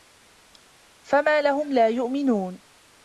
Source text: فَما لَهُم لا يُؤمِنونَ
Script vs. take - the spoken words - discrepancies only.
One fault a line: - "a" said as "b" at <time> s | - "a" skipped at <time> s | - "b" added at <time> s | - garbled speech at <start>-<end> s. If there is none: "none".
none